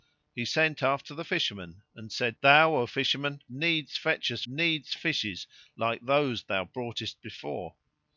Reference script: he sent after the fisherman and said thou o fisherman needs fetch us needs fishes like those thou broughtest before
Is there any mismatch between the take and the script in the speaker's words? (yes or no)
no